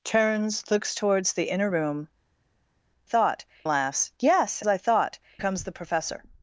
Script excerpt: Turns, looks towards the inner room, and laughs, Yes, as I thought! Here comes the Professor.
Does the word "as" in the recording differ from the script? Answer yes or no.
yes